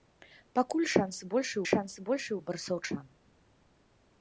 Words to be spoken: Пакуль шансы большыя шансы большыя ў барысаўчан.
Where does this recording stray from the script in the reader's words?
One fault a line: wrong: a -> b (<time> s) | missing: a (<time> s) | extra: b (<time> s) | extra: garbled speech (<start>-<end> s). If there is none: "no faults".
no faults